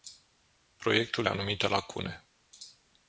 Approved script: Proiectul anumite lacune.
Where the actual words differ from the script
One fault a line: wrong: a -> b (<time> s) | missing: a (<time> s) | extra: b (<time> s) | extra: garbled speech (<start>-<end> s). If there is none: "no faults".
no faults